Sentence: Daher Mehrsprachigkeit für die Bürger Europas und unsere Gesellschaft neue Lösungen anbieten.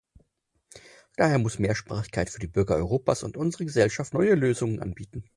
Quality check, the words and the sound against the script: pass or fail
fail